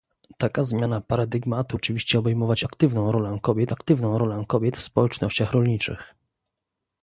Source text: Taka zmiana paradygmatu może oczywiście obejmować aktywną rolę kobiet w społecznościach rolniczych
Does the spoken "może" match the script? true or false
false